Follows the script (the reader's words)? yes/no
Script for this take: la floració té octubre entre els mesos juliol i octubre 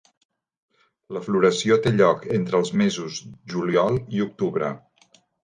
no